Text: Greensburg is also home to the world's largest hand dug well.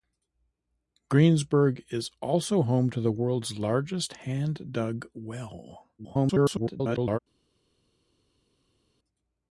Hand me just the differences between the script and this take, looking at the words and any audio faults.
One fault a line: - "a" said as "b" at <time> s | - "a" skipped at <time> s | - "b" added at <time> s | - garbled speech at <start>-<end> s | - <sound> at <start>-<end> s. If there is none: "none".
- garbled speech at 6.0-7.2 s